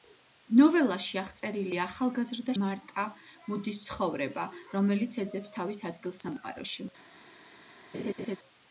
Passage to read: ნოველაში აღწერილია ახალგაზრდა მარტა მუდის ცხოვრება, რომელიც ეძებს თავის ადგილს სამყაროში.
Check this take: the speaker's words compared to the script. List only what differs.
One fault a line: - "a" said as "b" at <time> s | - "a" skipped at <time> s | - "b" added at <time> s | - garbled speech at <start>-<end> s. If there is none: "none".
none